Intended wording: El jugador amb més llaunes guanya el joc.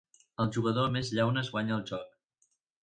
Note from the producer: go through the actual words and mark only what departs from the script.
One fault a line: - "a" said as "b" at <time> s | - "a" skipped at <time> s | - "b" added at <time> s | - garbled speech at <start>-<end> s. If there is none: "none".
none